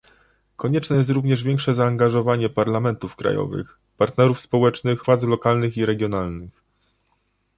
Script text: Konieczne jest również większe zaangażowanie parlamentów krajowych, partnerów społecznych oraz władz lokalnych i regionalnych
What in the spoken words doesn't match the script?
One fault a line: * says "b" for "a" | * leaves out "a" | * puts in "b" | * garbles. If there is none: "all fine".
* leaves out "oraz"